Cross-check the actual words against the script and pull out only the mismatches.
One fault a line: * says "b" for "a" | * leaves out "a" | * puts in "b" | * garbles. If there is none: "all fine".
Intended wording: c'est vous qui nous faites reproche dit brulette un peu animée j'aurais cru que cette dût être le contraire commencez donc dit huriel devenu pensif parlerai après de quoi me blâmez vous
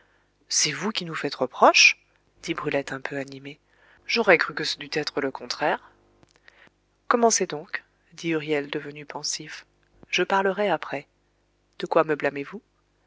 * says "ce" for "cette"
* puts in "je"